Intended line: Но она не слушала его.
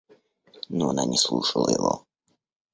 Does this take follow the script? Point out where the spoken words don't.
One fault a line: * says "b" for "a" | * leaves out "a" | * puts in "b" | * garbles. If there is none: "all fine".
all fine